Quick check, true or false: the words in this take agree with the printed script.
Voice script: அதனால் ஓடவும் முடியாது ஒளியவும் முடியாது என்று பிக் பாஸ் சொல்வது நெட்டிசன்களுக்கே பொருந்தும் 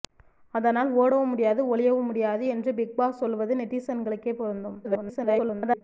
false